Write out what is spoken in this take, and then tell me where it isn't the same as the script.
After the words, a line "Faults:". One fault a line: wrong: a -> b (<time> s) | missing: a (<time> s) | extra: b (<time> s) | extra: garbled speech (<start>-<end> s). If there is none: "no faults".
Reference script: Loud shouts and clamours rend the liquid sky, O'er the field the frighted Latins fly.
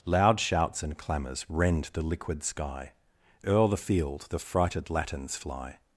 Loud shouts and clamours rend the liquid sky, O'er the field the frighted Latins fly.
Faults:
no faults